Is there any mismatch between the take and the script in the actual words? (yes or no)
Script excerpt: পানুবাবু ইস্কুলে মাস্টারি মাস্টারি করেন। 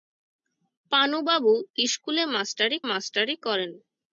no